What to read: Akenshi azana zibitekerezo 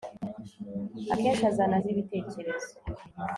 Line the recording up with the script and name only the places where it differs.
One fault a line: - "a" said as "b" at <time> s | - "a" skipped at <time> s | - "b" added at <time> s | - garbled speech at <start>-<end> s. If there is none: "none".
none